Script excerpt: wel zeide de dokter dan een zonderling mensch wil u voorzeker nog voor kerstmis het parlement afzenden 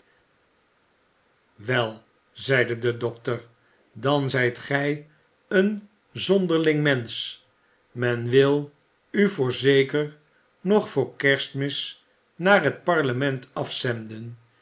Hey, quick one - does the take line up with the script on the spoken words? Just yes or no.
no